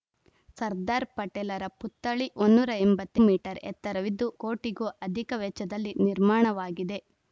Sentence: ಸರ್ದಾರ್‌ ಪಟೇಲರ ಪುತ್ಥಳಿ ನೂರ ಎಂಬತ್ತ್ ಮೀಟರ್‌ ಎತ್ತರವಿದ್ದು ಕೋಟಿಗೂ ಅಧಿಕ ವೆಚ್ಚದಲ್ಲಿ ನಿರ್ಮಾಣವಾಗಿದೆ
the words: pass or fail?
pass